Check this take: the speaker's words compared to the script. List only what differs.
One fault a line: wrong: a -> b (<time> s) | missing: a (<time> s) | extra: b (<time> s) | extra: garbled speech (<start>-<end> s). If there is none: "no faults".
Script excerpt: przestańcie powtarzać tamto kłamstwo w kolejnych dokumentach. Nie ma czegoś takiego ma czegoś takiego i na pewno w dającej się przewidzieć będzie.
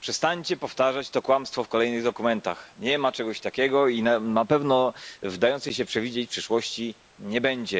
wrong: tamto -> to (1.1 s)
missing: ma czegoś takiego (3.9 s)
extra: przyszłości nie (6.3 s)